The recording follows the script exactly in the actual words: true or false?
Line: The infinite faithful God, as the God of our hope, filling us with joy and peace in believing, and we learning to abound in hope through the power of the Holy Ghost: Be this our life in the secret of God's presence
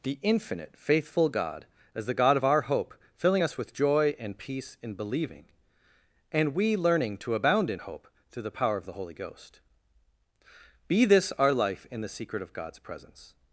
true